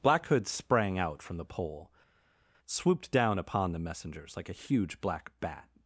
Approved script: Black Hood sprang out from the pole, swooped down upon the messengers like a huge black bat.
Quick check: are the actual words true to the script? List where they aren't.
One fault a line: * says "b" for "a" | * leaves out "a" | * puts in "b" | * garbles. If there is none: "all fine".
all fine